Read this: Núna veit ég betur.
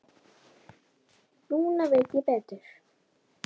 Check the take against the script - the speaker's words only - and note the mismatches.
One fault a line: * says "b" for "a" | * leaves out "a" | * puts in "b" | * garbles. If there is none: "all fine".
all fine